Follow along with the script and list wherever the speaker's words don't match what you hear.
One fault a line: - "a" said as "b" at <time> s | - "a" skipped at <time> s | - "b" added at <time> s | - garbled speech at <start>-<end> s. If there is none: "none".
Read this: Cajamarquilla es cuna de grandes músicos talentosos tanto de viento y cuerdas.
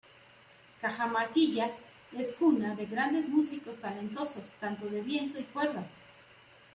none